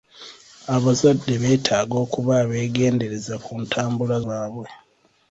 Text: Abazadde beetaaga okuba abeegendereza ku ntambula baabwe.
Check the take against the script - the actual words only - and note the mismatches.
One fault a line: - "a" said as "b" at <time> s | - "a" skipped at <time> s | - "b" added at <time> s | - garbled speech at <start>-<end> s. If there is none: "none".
none